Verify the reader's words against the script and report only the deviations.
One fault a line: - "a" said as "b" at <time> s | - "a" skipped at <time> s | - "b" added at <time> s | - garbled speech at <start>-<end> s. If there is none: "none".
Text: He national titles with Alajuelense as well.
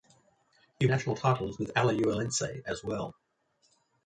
none